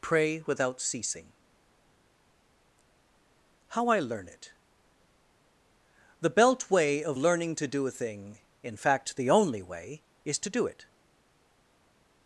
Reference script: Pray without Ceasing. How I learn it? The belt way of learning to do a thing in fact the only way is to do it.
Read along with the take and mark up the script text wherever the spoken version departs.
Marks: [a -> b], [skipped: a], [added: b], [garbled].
Pray without Ceasing. How I learn it? The belt way of learning to do a thing in fact the only way is to do it.